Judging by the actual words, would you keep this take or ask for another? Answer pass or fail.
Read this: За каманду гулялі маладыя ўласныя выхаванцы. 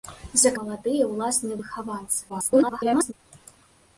fail